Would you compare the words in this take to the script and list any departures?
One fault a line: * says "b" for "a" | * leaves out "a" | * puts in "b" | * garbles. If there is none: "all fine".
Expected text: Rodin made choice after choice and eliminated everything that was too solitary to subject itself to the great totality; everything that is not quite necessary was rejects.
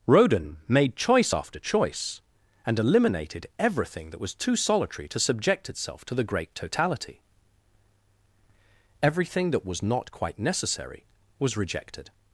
* says "was" for "is"
* says "rejected" for "rejects"